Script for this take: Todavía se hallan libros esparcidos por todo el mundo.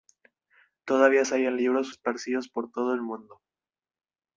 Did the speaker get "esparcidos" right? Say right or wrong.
right